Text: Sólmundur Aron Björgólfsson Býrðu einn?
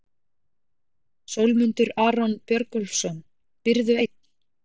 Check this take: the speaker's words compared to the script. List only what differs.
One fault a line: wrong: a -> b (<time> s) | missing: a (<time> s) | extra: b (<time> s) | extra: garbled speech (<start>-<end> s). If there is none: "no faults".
no faults